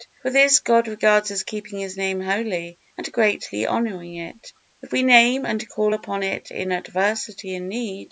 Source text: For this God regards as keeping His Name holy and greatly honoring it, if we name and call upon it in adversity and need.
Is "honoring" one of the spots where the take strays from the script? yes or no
no